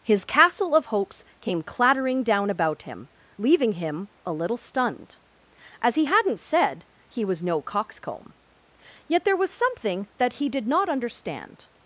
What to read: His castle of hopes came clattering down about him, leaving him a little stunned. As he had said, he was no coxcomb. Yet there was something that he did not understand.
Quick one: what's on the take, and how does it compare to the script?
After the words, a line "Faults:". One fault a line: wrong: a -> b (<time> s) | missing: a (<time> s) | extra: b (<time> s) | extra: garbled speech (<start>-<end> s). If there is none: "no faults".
His castle of hopes came clattering down about him, leaving him a little stunned. As he hadn't said, he was no coxcomb. Yet there was something that he did not understand.
Faults:
wrong: had -> hadn't (6.0 s)